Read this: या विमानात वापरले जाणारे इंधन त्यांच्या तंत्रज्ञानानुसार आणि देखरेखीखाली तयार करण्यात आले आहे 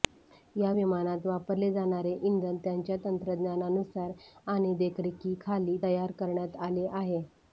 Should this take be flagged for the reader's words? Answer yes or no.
no